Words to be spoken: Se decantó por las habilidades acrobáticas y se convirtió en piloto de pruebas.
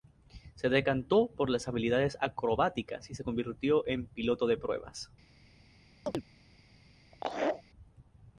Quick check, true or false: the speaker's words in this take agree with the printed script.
true